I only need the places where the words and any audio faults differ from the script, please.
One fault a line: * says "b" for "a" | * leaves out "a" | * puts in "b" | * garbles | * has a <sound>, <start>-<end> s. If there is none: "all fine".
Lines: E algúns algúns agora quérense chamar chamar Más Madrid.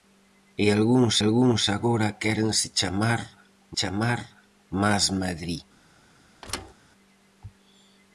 * has a thud, 6.4-6.7 s